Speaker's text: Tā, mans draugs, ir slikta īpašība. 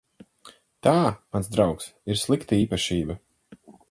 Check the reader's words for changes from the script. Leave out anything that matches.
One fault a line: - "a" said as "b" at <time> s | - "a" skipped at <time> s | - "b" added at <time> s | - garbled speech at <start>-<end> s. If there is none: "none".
none